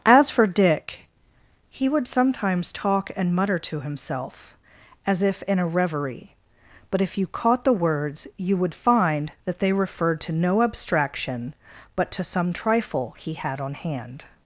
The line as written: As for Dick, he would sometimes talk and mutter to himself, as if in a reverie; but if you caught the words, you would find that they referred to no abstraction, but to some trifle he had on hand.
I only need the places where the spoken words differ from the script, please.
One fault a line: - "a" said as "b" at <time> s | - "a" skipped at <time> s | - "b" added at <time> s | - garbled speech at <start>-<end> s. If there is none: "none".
none